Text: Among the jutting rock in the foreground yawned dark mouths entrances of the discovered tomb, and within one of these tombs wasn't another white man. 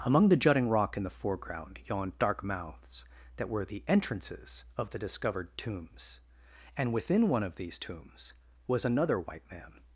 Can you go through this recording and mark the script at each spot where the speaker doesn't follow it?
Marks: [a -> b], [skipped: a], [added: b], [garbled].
Among the jutting rock in the foreground yawned dark mouths [added: that were the] entrances of the discovered [tomb, -> tombs] and within one of these tombs [wasn't -> was] another white man.